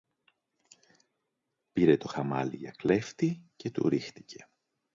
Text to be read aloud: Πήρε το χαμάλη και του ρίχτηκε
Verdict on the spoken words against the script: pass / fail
fail